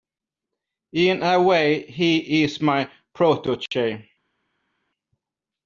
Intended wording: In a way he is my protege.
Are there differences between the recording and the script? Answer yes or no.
no